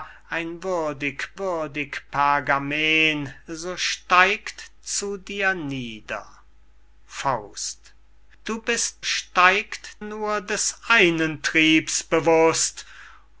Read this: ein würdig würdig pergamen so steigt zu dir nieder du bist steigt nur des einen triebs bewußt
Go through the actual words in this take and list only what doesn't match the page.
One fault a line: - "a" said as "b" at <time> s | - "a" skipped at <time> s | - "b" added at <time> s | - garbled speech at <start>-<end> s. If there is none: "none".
none